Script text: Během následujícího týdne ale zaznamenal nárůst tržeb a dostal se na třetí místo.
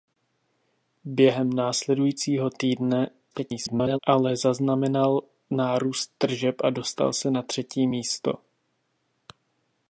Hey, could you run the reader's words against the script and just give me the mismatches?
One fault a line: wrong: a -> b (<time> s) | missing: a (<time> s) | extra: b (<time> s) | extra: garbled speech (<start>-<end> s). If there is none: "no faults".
extra: garbled speech (3.3-4.0 s)